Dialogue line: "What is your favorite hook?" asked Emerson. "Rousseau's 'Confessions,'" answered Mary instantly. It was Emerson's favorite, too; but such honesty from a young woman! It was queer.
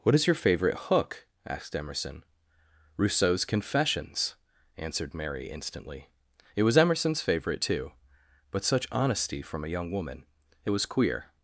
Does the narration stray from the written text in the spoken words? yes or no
no